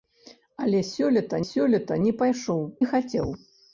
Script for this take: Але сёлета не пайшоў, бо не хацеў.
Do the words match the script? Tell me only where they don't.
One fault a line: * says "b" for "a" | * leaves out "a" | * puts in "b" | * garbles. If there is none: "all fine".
* puts in "сёлета"
* leaves out "бо"